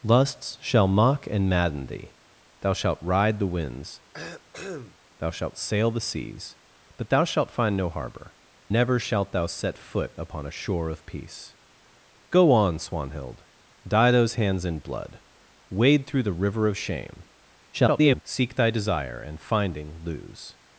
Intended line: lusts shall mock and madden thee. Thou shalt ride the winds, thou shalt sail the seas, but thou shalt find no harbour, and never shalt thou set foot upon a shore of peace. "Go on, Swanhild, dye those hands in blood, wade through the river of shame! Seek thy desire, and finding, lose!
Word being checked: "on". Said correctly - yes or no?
yes